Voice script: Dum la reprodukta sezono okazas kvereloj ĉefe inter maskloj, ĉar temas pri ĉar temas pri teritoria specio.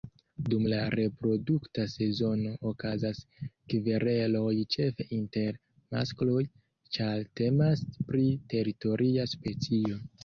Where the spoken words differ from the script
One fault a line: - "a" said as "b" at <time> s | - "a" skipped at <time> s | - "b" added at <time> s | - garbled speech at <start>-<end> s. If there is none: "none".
- "ĉar temas pri" skipped at 8.3 s